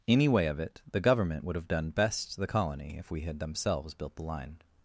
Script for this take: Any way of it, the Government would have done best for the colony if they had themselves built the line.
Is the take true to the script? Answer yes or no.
no